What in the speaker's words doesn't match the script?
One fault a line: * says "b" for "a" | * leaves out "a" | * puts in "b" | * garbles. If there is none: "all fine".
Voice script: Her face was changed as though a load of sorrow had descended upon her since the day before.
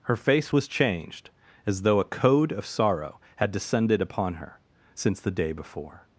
* says "code" for "load"